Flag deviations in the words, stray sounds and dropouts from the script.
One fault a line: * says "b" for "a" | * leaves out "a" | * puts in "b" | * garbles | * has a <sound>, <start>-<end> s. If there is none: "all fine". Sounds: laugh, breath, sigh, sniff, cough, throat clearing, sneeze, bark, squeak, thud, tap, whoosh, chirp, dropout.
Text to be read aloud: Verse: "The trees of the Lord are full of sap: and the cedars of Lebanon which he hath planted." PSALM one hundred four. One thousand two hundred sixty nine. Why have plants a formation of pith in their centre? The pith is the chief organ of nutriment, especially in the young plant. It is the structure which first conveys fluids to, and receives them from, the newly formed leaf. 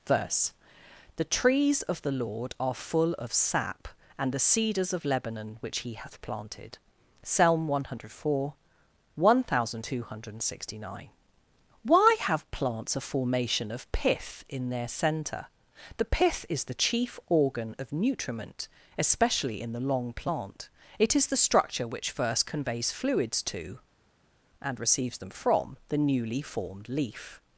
* says "long" for "young"